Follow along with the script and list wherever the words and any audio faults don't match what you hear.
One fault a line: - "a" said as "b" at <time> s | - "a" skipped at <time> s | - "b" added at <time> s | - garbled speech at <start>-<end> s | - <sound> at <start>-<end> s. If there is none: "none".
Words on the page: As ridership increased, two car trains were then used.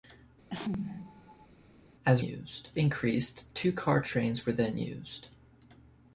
- sneeze at 0.5-1.5 s
- "ridership" said as "used" at 2.2 s